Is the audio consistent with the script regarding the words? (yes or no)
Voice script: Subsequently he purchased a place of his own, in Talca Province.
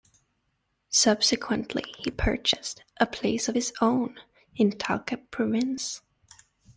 yes